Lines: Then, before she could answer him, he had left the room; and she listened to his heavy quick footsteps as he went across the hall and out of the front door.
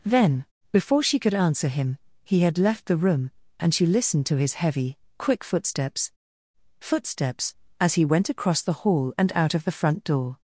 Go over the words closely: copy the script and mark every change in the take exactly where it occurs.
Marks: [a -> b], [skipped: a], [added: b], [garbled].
Then, before she could answer him, he had left the room; and she listened to his heavy quick footsteps [added: footsteps] as he went across the hall and out of the front door.